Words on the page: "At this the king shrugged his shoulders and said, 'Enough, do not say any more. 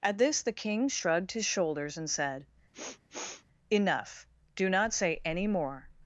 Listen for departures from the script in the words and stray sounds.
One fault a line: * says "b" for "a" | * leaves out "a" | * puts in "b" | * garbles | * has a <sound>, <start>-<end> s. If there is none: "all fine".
* has a sniff, 2.7-3.5 s